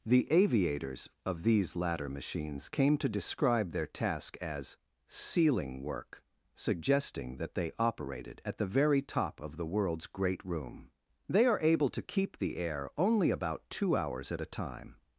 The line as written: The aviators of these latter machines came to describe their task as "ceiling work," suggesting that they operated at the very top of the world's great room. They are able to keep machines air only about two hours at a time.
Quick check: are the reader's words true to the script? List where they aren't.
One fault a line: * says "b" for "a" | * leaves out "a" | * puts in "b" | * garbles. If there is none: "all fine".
* says "the" for "machines"